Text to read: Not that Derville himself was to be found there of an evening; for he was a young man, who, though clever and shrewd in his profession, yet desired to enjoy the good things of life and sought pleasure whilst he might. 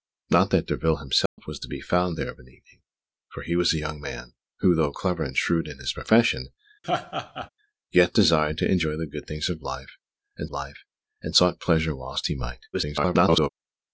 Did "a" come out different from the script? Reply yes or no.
no